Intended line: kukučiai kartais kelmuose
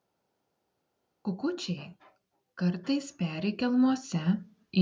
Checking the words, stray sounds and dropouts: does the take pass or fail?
fail